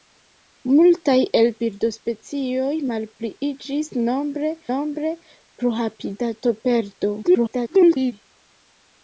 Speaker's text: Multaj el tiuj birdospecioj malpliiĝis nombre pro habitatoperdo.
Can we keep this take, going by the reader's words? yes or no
no